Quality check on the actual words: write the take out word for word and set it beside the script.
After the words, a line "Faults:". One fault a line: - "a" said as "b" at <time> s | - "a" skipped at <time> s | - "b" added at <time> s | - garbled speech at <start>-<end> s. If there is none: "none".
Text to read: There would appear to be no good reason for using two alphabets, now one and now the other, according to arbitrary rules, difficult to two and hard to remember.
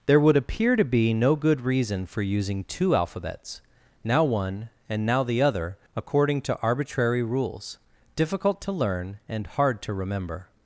There would appear to be no good reason for using two alphabets, now one and now the other, according to arbitrary rules, difficult to learn and hard to remember.
Faults:
- "two" said as "learn" at 8.7 s